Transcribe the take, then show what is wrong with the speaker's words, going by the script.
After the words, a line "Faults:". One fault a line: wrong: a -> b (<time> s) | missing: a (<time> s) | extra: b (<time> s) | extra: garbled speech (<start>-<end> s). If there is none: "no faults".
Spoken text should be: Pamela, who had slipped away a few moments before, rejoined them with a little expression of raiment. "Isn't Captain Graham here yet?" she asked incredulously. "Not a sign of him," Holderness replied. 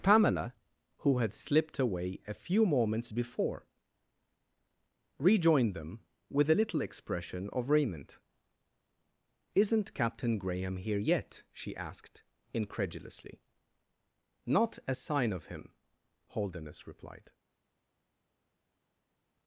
Pamela, who had slipped away a few moments before, rejoined them with a little expression of raiment. "Isn't Captain Graham here yet?" she asked incredulously. "Not a sign of him," Holderness replied.
Faults:
no faults